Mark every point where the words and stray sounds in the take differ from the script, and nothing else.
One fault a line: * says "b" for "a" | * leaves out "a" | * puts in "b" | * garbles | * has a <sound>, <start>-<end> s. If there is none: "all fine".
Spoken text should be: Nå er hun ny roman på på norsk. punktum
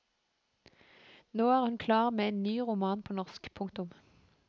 * puts in "klar med en"
* leaves out "på"